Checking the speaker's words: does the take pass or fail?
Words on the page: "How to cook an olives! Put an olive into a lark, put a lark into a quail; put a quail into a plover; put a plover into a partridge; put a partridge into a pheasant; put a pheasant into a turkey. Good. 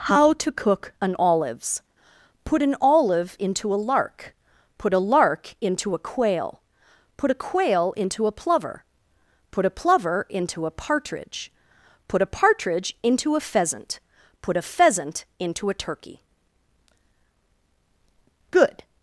pass